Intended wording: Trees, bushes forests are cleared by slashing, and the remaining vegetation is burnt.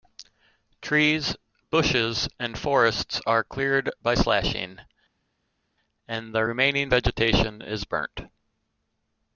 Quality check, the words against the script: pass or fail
fail